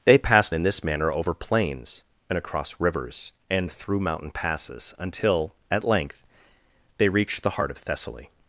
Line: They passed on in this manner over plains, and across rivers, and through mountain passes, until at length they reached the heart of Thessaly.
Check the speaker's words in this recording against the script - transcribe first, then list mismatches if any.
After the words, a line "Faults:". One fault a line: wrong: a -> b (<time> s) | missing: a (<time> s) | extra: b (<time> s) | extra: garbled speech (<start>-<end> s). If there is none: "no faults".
They passed in this manner over plains, and across rivers, and through mountain passes, until at length they reached the heart of Thessaly.
Faults:
missing: on (0.6 s)